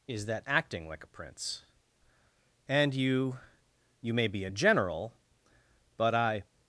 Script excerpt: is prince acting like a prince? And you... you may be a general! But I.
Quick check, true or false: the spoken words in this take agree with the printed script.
false